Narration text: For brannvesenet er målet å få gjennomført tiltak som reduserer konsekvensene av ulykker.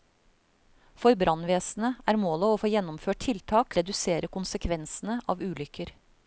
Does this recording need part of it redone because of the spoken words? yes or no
yes